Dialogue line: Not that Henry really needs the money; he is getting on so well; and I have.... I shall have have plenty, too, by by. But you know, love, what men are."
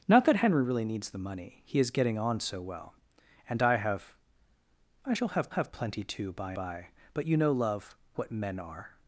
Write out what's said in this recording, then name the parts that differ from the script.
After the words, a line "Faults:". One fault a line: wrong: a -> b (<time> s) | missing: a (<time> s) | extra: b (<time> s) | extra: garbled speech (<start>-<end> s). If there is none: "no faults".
Not that Henry really needs the money; he is getting on so well; and I have.... I shall have have plenty, too, by by. But you know, love, what men are."
Faults:
no faults